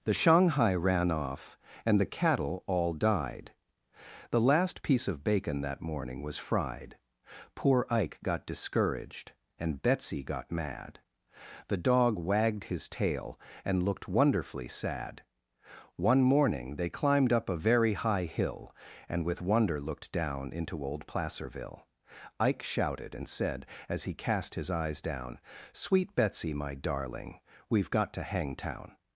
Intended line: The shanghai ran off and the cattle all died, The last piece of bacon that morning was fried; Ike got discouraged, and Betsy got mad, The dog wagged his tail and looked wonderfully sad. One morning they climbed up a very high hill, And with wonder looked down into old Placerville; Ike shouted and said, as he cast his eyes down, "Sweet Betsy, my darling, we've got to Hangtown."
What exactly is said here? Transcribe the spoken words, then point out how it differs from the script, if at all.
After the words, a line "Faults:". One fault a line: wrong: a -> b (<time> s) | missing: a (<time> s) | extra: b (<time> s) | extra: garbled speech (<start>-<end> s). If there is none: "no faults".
The shanghai ran off and the cattle all died, The last piece of bacon that morning was fried; Poor Ike got discouraged, and Betsy got mad, The dog wagged his tail and looked wonderfully sad. One morning they climbed up a very high hill, And with wonder looked down into old Placerville; Ike shouted and said, as he cast his eyes down, "Sweet Betsy, my darling, we've got to Hangtown."
Faults:
extra: Poor (7.5 s)